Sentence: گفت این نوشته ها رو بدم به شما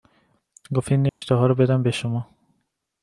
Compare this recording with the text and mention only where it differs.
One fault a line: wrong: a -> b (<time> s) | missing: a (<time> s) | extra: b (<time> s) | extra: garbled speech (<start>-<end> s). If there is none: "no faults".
no faults